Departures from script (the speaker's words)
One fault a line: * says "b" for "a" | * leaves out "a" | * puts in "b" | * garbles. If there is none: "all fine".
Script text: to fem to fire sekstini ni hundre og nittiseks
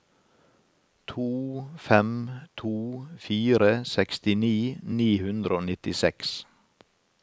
all fine